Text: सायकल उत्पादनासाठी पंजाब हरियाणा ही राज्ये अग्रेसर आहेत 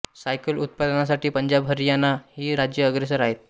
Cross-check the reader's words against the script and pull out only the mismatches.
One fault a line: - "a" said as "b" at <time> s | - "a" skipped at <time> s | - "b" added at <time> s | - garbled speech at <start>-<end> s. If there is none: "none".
none